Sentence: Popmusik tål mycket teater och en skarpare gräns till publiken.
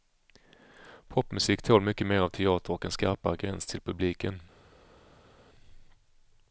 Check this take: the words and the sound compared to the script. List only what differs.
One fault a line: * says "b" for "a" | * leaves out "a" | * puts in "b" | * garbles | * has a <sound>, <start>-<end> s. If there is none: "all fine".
* puts in "mer av"